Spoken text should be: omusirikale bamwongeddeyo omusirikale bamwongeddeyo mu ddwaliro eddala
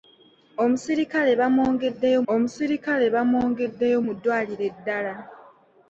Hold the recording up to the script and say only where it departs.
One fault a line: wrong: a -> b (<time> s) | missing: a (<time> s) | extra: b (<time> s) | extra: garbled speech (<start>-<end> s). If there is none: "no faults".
no faults